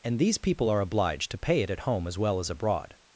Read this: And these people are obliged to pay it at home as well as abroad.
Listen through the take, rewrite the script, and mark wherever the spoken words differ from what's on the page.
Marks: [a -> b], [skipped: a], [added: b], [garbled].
And these people are obliged to pay it at home as well as abroad.